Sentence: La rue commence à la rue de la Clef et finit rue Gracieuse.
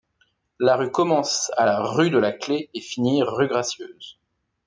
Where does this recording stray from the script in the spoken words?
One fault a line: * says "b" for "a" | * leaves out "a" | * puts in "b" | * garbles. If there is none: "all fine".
all fine